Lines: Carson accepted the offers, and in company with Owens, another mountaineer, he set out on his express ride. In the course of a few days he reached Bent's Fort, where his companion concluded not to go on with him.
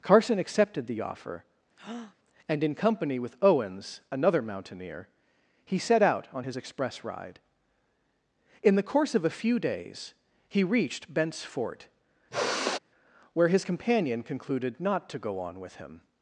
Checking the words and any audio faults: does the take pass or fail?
fail